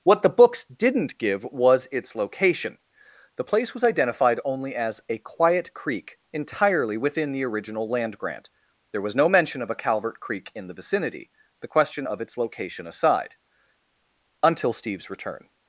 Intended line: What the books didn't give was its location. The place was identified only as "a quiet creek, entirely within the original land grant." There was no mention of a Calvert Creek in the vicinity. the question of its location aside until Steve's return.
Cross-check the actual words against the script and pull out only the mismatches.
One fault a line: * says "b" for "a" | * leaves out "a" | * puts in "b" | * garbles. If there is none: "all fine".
all fine